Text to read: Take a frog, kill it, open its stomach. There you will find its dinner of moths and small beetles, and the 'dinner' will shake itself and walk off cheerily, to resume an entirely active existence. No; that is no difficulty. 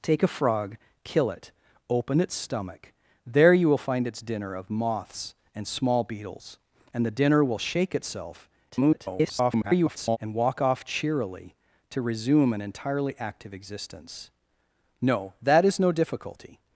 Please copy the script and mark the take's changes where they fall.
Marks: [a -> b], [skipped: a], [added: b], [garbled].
Take a frog, kill it, open its stomach. There you will find its dinner of moths and small beetles, and the 'dinner' will shake itself [garbled] and walk off cheerily, to resume an entirely active existence. No; that is no difficulty.